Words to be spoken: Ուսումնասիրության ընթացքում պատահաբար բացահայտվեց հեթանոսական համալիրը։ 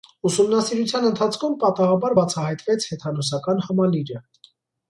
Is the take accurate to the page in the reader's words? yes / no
yes